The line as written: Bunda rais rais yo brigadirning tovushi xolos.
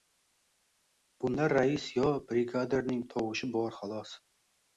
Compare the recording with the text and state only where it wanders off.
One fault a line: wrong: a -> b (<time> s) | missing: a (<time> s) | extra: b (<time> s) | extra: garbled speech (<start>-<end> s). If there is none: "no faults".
missing: rais (1.9 s)
extra: bor (3.6 s)